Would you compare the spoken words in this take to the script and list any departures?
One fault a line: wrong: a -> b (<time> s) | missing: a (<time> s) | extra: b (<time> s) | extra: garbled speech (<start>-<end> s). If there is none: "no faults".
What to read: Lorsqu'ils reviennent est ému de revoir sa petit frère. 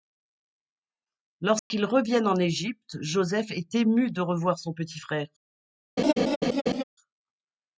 extra: en Égypte Joseph (2.2 s)
wrong: sa -> son (4.6 s)